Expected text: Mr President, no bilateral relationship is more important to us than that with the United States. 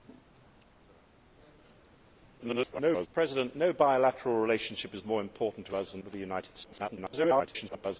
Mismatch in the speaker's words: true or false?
true